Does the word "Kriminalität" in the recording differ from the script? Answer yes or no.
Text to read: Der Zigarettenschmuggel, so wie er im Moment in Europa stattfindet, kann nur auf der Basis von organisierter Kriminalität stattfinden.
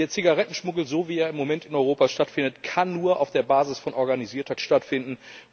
yes